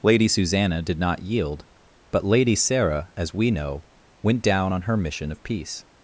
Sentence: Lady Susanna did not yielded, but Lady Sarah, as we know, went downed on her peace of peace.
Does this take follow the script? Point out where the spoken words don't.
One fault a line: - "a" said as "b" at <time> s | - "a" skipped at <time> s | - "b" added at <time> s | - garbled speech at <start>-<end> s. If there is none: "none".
- "yielded" said as "yield" at 1.2 s
- "downed" said as "down" at 4.4 s
- "peace" said as "mission" at 5.0 s